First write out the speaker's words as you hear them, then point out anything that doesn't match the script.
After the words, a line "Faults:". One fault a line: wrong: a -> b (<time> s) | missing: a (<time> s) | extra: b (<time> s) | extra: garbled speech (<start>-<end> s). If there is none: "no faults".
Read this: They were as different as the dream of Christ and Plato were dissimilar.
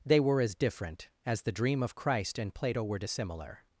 They were as different as the dream of Christ and Plato were dissimilar.
Faults:
no faults